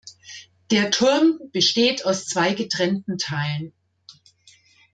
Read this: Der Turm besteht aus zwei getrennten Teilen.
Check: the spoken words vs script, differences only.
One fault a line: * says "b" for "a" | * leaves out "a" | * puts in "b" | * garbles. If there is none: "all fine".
all fine